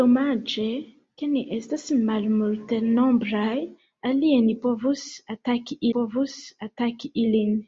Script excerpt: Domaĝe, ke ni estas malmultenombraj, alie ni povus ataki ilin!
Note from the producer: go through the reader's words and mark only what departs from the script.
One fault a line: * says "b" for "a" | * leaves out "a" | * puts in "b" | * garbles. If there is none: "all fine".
* puts in "povus ataki"